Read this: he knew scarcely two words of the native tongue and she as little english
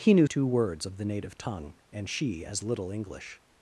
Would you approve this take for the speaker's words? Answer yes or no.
no